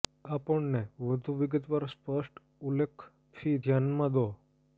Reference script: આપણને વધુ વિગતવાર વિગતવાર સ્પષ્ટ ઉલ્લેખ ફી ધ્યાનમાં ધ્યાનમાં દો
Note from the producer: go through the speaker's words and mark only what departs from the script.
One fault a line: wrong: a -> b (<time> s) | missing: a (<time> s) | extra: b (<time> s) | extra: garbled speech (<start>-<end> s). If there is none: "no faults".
missing: વિગતવાર (1.9 s)
missing: ધ્યાનમાં (4.2 s)